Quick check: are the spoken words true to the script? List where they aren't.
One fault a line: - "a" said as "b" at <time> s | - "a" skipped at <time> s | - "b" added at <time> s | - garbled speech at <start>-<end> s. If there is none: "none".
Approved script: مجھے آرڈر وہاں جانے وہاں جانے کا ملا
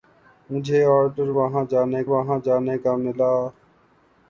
none